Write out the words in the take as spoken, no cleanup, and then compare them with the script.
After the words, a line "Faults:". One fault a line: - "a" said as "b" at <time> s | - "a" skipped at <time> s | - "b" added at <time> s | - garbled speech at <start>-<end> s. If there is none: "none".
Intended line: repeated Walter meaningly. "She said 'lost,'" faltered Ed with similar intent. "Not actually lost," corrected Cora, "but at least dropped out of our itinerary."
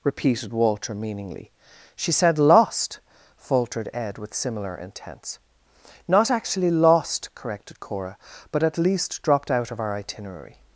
repeated Walter meaningly. "She said 'lost,'" faltered Ed with similar intents. "Not actually lost," corrected Cora, "but at least dropped out of our itinerary."
Faults:
- "intent" said as "intents" at 4.8 s